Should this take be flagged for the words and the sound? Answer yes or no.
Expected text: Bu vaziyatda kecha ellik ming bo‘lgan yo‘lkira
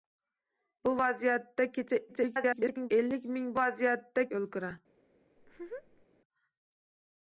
yes